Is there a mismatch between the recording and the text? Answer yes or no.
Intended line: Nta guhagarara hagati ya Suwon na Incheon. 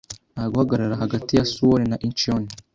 no